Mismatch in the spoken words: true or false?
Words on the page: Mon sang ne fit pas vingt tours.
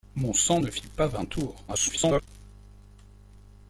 true